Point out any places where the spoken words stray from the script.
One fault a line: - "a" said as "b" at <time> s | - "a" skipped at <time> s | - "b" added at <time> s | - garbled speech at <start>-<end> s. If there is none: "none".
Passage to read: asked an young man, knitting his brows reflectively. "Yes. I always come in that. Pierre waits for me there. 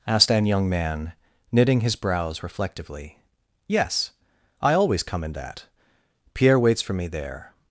none